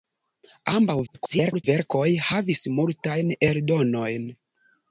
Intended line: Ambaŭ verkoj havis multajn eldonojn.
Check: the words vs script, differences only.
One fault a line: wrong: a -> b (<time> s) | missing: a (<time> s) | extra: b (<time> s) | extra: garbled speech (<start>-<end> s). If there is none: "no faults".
extra: garbled speech (1.1-1.6 s)